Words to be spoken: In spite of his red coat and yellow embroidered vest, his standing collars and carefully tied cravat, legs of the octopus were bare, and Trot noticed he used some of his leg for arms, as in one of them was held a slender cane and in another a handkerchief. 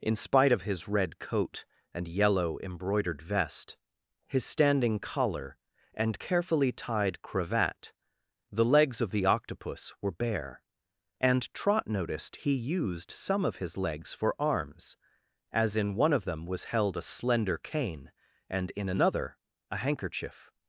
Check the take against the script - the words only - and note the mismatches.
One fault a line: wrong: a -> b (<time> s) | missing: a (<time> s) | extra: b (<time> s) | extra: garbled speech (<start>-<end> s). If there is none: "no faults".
wrong: collars -> collar (5.0 s)
extra: the (8.5 s)
wrong: leg -> legs (13.8 s)